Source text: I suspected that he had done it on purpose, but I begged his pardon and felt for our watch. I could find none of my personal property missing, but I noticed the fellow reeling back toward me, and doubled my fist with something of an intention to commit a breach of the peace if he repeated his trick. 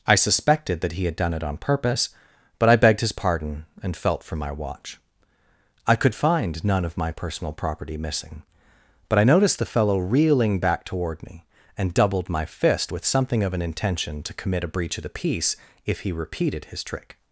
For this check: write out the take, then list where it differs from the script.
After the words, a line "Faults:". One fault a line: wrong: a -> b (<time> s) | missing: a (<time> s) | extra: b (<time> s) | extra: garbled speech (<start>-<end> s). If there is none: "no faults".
I suspected that he had done it on purpose, but I begged his pardon and felt for my watch. I could find none of my personal property missing, but I noticed the fellow reeling back toward me, and doubled my fist with something of an intention to commit a breach of the peace if he repeated his trick.
Faults:
wrong: our -> my (4.3 s)